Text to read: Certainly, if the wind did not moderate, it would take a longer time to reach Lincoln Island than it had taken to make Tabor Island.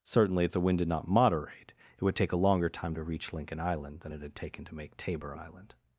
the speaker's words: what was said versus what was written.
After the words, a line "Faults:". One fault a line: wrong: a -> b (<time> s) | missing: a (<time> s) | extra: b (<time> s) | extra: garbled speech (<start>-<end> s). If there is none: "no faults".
Certainly, if the wind did not moderate, it would take a longer time to reach Lincoln Island than it had taken to make Tabor Island.
Faults:
no faults